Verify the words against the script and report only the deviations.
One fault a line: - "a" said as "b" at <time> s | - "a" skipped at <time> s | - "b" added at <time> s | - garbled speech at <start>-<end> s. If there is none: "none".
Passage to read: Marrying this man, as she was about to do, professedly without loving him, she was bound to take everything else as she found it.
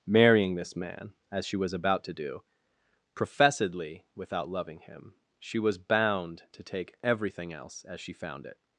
none